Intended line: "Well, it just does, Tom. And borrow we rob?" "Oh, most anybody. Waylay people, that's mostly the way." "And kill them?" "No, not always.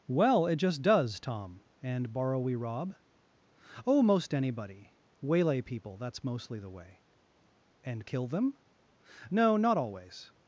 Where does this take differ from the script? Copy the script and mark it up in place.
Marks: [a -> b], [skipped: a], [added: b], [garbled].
"Well, it just does, Tom. And borrow we rob?" "Oh, most anybody. Waylay people, that's mostly the way." "And kill them?" "No, not always.